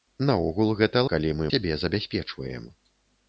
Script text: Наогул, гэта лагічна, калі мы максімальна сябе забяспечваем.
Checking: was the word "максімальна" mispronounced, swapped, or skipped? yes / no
yes